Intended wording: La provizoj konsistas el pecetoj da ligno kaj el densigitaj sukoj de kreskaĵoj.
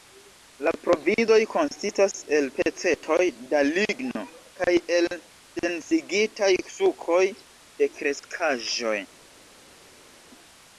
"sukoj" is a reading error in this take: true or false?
false